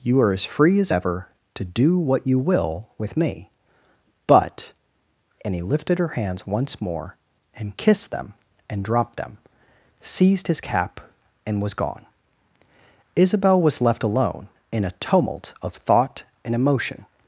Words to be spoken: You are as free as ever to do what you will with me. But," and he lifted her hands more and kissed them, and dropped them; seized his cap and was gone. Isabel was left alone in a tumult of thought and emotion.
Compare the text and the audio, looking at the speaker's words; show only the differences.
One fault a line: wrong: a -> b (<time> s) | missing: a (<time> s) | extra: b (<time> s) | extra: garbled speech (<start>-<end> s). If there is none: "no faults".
extra: once (6.5 s)